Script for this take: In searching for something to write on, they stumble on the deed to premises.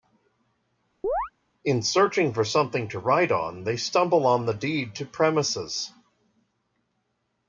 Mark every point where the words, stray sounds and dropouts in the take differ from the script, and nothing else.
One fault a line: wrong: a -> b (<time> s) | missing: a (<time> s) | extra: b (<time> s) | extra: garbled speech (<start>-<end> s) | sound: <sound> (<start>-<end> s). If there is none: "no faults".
sound: chirp (1.0-1.3 s)